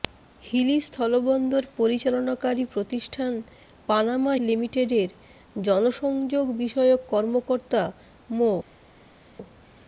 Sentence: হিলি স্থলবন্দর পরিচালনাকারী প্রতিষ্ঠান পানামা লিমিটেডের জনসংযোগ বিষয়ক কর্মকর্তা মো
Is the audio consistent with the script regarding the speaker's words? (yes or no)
yes